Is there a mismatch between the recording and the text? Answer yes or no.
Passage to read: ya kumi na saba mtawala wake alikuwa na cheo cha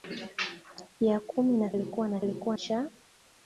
yes